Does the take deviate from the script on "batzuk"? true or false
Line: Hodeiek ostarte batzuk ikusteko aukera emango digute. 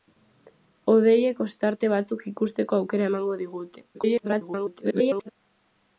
false